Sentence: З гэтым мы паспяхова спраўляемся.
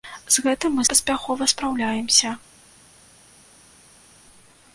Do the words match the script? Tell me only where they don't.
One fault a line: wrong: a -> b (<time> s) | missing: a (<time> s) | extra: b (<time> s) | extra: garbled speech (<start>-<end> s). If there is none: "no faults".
no faults